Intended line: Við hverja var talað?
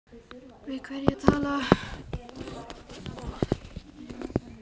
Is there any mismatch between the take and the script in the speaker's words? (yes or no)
no